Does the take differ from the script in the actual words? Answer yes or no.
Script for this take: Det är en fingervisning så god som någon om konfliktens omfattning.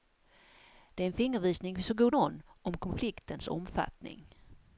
yes